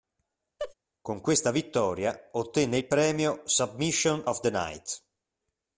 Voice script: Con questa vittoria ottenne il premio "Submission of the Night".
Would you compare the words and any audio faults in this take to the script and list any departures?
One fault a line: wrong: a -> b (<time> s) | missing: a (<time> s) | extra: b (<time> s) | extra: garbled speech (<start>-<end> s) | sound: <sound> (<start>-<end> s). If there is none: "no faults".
sound: laugh (0.6-0.7 s)